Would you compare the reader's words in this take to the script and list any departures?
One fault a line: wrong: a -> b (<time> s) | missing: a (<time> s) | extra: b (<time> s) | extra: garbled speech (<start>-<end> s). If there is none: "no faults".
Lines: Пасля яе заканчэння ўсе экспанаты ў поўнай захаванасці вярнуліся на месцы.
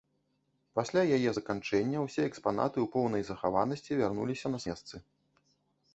no faults